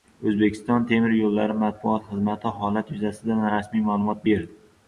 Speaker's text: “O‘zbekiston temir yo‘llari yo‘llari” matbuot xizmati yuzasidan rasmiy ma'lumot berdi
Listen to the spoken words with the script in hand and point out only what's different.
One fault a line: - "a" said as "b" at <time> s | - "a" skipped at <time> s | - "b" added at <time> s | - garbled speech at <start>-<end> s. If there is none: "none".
- "yo‘llari" skipped at 1.6 s
- "holat" added at 2.6 s